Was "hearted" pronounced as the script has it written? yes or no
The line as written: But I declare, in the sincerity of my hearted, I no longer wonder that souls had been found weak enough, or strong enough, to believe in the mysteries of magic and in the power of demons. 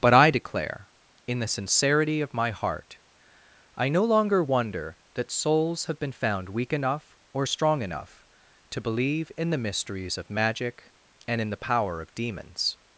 no